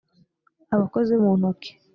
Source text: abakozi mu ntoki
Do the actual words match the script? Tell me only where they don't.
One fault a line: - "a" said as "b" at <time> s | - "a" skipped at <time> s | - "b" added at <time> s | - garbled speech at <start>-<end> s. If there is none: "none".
none